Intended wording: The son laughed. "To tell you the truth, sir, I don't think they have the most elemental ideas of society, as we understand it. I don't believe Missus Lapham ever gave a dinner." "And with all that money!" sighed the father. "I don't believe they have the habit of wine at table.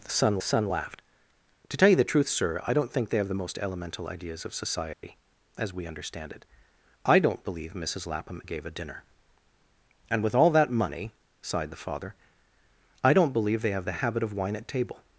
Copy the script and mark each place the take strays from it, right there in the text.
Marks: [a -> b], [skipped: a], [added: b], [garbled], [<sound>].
The son [added: son] laughed. "To tell you the truth, sir, I don't think they have the most elemental ideas of society, [dropout] as we understand it. I don't believe Missus Lapham [skipped: ever] gave a dinner." "And with all that money!" sighed the father. "I don't believe they have the habit of wine at table.